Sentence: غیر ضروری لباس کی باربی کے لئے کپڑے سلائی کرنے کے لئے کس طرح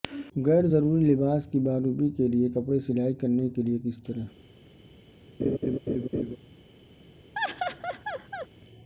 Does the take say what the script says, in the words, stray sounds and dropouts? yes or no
no